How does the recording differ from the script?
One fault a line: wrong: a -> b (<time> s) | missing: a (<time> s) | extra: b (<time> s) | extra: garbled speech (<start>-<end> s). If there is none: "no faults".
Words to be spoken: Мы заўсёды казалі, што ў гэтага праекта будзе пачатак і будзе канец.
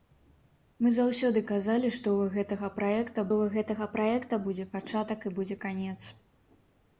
extra: ў гэтага праекта (3.4 s)